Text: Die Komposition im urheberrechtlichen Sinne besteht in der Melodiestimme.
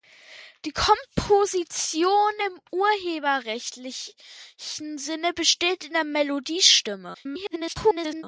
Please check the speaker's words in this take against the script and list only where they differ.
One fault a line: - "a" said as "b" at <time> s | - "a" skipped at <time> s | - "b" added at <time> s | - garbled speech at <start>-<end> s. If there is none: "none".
- garbled speech at 7.1-8.2 s